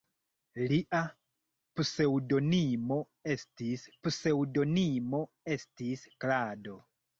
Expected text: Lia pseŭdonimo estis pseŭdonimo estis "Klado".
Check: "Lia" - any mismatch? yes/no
no